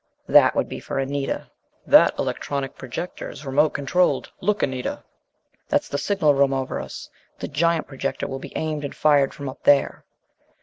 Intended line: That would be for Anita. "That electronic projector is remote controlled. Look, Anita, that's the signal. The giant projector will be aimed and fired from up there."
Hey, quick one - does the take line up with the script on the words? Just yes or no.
no